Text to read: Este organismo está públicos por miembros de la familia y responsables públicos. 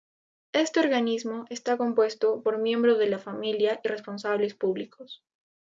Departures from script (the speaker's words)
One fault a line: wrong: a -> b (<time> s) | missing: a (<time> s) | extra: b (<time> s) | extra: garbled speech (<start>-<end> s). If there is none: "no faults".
wrong: públicos -> compuesto (1.8 s)